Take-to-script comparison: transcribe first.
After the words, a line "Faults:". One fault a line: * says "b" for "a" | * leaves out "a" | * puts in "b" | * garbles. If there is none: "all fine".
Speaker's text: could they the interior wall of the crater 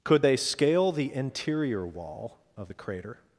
could they scale the interior wall of the crater
Faults:
* puts in "scale"